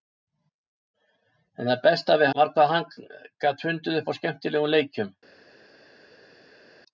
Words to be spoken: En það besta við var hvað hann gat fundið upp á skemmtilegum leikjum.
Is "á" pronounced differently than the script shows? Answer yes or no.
no